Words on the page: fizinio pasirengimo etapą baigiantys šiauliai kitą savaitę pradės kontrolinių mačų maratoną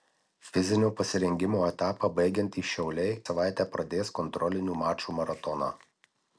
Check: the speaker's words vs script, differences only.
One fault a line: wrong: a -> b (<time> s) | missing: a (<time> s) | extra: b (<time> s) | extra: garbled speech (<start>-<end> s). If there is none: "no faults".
missing: kitą (3.1 s)